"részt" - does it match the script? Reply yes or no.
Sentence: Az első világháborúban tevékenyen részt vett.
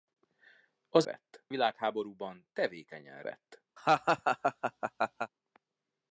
no